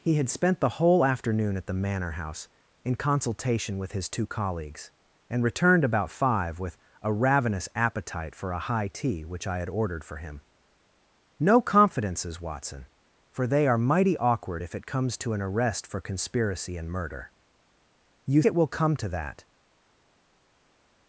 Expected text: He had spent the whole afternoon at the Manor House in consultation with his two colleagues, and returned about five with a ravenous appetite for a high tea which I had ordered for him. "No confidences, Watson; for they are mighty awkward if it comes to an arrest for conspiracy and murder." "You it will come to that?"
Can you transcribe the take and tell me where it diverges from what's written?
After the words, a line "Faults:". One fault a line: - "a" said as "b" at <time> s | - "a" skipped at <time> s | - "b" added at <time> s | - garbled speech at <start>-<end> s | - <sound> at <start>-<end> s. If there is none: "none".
He had spent the whole afternoon at the Manor House in consultation with his two colleagues, and returned about five with a ravenous appetite for a high tea which I had ordered for him. "No confidences, Watson; for they are mighty awkward if it comes to an arrest for conspiracy and murder." "You it will come to that?"
Faults:
none